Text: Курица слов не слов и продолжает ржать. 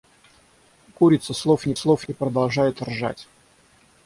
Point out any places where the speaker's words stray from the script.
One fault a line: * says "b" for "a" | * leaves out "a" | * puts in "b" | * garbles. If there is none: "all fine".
all fine